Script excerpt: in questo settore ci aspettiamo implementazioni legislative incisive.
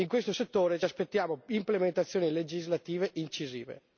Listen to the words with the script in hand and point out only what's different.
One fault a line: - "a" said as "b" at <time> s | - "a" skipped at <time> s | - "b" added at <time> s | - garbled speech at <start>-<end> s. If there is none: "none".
none